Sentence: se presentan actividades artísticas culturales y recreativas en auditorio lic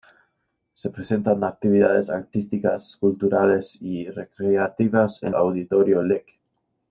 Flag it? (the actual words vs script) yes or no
no